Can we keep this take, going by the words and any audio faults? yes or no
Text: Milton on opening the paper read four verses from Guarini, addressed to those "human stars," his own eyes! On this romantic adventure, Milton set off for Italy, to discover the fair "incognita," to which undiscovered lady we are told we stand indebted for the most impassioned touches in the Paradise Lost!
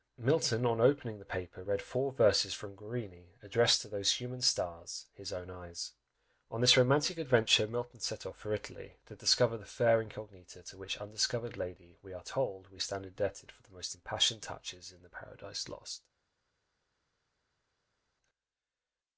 yes